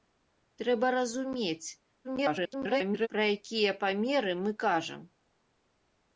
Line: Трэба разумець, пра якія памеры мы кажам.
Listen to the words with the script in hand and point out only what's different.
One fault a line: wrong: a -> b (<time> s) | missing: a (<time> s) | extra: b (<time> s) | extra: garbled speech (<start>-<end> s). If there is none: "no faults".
extra: garbled speech (2.0-3.1 s)